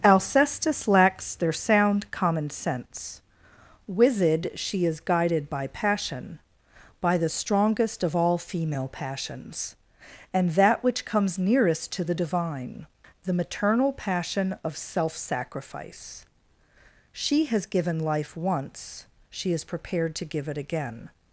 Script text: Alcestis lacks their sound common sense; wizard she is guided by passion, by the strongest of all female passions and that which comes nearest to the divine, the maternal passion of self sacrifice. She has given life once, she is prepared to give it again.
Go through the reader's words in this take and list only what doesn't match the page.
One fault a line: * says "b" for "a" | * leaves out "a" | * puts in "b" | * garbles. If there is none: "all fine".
all fine